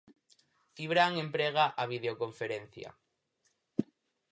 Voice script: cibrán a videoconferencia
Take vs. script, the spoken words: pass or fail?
fail